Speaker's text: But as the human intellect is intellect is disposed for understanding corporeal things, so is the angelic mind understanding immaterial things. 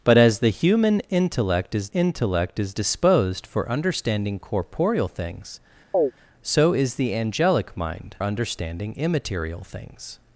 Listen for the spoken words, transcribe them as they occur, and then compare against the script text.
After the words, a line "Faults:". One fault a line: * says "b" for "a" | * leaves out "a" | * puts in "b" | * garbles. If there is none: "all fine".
But as the human intellect is intellect is disposed for understanding corporeal things, so is the angelic mind understanding immaterial things.
Faults:
all fine